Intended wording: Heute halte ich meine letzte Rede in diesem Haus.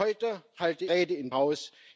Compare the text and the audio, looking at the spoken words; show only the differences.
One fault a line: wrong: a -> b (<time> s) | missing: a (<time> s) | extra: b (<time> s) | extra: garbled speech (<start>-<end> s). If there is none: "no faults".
missing: ich meine letzte (0.8 s)
missing: diesem (1.3 s)